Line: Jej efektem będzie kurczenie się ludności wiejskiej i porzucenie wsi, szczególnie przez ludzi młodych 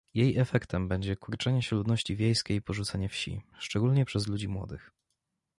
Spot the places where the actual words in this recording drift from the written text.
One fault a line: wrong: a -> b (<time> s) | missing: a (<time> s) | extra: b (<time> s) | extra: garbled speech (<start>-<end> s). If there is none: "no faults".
no faults